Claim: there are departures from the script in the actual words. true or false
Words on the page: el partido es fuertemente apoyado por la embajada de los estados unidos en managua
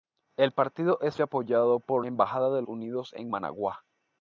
true